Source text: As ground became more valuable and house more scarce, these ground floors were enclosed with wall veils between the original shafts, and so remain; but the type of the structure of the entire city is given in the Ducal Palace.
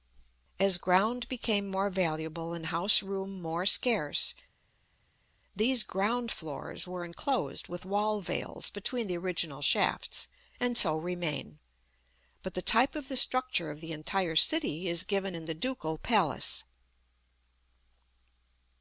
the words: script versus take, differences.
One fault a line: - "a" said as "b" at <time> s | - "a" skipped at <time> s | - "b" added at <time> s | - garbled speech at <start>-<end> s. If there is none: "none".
- "room" added at 3.0 s